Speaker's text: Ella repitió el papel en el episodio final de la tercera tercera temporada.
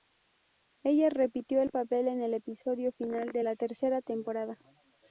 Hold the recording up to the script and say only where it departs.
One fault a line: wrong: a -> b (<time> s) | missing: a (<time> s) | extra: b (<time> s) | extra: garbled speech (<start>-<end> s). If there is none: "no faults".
missing: tercera (4.0 s)